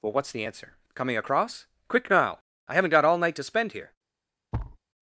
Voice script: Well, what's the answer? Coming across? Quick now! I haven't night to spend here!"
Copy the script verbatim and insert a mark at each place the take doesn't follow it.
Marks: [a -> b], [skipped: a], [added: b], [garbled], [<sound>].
Well, what's the answer? Coming across? Quick now! I haven't [added: got all] night to spend here!" [thud]